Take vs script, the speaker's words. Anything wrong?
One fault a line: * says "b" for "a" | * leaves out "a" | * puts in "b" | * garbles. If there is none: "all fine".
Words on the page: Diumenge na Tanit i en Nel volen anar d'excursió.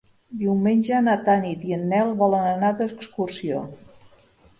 all fine